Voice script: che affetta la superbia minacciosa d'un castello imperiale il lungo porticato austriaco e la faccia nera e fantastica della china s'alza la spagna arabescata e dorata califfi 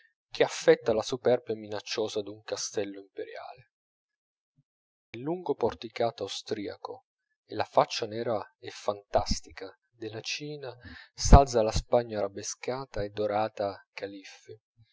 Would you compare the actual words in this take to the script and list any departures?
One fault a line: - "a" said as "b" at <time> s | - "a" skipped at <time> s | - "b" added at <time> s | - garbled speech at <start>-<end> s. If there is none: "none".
none